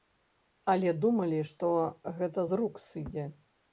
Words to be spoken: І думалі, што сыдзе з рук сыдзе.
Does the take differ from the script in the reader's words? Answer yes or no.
yes